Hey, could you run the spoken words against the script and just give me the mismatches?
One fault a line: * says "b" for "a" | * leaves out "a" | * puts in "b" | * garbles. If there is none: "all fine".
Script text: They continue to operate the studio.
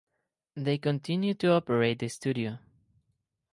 all fine